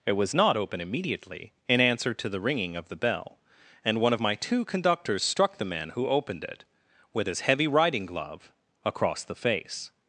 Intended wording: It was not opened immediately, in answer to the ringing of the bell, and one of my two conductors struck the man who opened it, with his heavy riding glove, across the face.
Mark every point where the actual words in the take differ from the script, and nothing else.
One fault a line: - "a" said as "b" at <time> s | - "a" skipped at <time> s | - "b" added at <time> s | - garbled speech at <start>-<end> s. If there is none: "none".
- "opened" said as "open" at 0.6 s